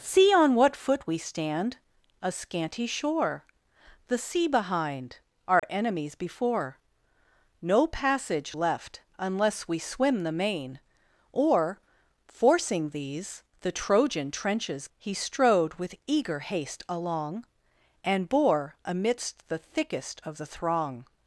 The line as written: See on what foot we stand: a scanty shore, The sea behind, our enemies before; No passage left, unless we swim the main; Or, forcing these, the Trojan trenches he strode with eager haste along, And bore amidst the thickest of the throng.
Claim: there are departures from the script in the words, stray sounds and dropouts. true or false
true